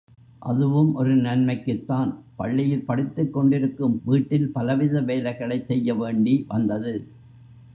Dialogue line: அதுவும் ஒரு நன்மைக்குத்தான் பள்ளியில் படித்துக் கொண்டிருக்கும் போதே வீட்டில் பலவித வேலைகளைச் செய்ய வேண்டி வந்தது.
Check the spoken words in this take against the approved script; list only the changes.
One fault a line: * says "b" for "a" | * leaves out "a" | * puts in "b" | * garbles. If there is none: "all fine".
* leaves out "போதே"